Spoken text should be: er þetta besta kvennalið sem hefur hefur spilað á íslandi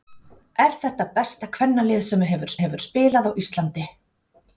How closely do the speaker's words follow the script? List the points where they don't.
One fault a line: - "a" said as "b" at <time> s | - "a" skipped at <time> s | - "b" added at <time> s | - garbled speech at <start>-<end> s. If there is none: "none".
none